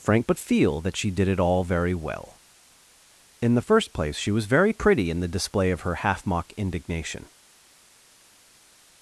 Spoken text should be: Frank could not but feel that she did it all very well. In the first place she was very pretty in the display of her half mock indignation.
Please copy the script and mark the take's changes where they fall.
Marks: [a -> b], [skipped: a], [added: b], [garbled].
Frank [skipped: could not] but feel that she did it all very well. In the first place she was very pretty in the display of her half mock indignation.